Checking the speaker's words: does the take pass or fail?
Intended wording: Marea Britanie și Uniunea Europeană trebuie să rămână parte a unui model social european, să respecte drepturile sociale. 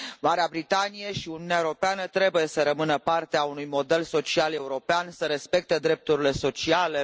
pass